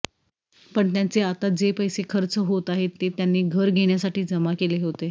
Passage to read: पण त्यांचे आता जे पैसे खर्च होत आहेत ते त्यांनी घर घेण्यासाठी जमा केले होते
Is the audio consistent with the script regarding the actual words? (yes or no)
yes